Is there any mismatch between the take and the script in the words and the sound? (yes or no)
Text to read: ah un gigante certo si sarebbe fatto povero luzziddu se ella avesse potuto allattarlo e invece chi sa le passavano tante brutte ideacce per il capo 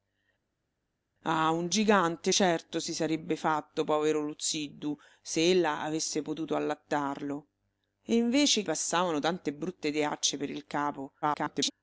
yes